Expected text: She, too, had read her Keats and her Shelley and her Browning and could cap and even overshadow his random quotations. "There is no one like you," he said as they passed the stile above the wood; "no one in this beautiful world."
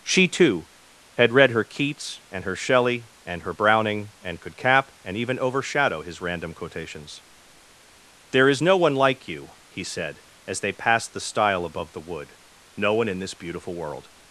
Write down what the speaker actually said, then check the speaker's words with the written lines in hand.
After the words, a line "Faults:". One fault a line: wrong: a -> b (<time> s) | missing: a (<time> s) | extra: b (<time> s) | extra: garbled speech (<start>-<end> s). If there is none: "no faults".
She, too, had read her Keats and her Shelley and her Browning and could cap and even overshadow his random quotations. "There is no one like you," he said as they passed the stile above the wood; "no one in this beautiful world."
Faults:
no faults